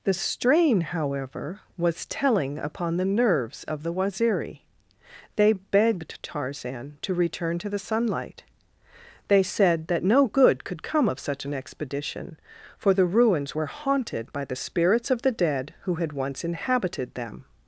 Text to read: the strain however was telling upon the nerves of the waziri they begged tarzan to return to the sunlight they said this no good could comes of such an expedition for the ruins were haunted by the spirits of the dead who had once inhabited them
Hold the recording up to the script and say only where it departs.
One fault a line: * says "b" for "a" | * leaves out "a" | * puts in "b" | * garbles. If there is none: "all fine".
* says "that" for "this"
* says "come" for "comes"